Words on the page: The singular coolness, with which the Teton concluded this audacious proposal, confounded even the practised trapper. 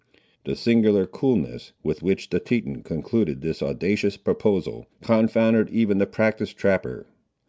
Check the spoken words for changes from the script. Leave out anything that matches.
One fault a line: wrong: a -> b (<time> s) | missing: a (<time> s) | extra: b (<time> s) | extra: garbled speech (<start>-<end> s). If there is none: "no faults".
no faults